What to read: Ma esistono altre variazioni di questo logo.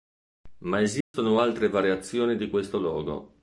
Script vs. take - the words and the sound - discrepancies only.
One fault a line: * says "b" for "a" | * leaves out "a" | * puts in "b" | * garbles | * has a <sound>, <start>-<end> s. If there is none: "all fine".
* has a dropout, 1.0-1.1 s